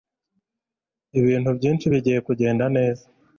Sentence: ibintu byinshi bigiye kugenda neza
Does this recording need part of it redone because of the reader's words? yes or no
no